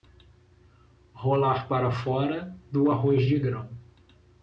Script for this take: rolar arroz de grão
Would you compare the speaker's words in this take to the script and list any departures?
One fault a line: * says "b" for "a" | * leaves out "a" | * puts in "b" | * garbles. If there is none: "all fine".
* puts in "para fora do"